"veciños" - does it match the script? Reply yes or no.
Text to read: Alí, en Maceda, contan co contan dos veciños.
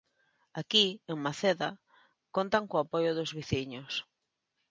yes